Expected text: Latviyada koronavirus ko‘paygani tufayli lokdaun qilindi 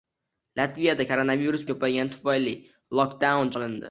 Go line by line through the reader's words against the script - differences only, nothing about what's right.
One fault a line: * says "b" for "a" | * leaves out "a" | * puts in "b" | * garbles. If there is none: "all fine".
all fine